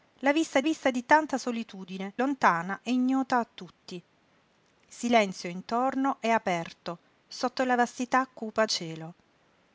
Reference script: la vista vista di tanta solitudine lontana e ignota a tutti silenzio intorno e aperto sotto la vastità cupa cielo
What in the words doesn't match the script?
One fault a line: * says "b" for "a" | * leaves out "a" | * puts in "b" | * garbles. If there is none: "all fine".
all fine